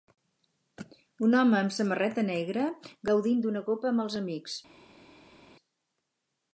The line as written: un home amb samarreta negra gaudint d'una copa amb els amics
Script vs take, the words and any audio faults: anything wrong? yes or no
no